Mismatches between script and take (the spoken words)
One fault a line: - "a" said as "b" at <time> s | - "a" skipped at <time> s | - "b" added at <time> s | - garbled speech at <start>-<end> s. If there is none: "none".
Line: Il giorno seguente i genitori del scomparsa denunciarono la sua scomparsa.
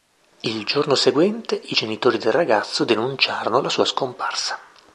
- "scomparsa" said as "ragazzo" at 2.3 s